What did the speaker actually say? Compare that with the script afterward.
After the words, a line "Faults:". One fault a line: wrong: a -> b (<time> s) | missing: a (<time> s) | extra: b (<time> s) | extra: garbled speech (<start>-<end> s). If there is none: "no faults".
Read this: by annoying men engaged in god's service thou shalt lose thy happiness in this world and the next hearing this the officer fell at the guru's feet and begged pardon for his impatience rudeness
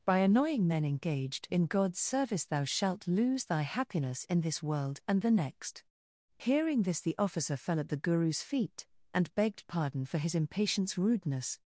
by annoying men engaged in god's service thou shalt lose thy happiness in this world and the next hearing this the officer fell at the guru's feet and begged pardon for his impatience rudeness
Faults:
no faults